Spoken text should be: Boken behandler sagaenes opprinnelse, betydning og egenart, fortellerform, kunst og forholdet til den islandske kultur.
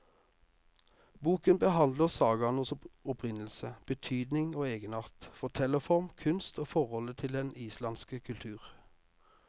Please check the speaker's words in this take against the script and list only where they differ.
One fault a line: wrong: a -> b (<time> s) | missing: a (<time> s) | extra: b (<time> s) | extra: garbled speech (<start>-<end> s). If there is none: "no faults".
no faults